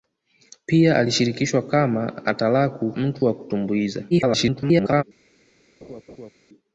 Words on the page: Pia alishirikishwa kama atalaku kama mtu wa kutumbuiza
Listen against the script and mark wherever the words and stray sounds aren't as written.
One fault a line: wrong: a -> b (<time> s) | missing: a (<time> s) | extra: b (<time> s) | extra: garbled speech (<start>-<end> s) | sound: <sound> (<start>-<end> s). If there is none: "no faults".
missing: kama (2.9 s)
extra: garbled speech (4.1-5.0 s)
sound: laugh (5.8-6.3 s)